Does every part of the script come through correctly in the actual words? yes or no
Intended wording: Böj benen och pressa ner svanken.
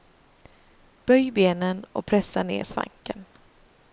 yes